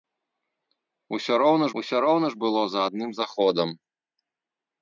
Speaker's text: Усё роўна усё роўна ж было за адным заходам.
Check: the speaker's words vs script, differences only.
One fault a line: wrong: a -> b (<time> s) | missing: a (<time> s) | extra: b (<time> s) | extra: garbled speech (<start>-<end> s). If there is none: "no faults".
no faults